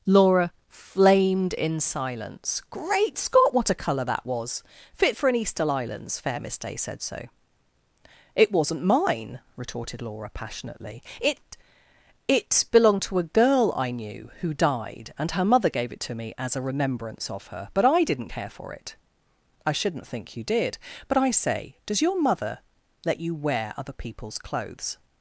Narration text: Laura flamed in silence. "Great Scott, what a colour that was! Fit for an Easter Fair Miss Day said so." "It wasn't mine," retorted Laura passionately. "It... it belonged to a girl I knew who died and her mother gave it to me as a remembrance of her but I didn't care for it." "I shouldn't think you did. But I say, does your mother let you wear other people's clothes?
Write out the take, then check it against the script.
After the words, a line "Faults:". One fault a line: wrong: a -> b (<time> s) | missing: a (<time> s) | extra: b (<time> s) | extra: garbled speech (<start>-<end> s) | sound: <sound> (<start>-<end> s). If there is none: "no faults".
Laura flamed in silence. "Great Scott, what a colour that was! Fit for an Easter islands Fair Miss Day said so." "It wasn't mine," retorted Laura passionately. "It... it belonged to a girl I knew who died and her mother gave it to me as a remembrance of her but I didn't care for it." "I shouldn't think you did. But I say, does your mother let you wear other people's clothes?
Faults:
extra: islands (5.7 s)